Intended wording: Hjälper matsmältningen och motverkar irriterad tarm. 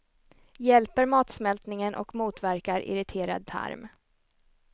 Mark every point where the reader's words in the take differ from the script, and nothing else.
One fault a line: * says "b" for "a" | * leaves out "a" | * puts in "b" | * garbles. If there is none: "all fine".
all fine